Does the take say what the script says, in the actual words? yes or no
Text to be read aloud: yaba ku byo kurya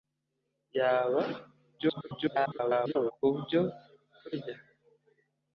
no